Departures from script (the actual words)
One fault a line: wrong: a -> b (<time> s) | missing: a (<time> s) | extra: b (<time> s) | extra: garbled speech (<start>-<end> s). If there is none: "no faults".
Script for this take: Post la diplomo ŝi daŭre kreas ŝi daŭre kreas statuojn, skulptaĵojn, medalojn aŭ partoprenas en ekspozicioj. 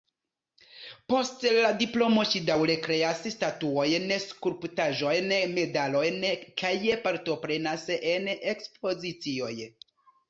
missing: ŝi daŭre kreas (3.2 s)
wrong: aŭ -> kaj (6.6 s)